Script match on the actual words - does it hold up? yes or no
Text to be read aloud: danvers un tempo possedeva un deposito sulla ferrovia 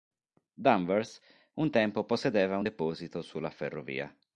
yes